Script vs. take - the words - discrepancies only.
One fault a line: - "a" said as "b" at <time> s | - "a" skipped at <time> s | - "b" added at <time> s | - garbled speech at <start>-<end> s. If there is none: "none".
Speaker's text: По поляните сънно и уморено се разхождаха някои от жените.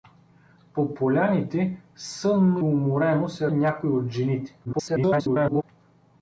- "и" skipped at 2.6 s
- "разхождаха" skipped at 3.5 s
- garbled speech at 4.6-5.6 s